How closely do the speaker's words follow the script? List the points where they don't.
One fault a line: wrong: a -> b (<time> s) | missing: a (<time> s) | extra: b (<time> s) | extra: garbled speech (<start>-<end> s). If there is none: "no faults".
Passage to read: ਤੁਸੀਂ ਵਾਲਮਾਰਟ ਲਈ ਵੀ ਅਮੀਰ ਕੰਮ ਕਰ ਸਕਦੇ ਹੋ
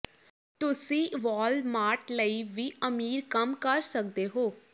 no faults